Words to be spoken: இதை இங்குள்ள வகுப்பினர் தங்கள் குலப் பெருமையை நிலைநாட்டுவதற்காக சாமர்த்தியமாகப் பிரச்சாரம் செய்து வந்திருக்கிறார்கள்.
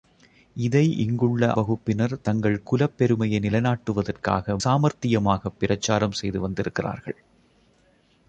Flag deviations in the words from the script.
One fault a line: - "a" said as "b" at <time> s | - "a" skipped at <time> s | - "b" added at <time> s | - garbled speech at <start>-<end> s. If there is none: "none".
none